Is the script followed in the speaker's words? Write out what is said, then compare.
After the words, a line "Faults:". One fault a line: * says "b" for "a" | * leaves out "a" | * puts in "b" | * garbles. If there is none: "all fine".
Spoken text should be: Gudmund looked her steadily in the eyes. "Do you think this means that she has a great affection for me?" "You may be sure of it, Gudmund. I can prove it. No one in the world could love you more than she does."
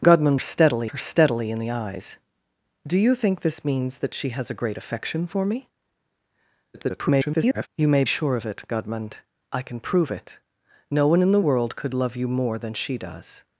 Gudmund steadily her steadily in the eyes. "Do you think this means that she has a great affection for me?" [garbled] "You may sure of it, Gudmund. I can prove it. No one in the world could love you more than she does."
Faults:
* says "steadily" for "looked"
* garbles
* leaves out "be"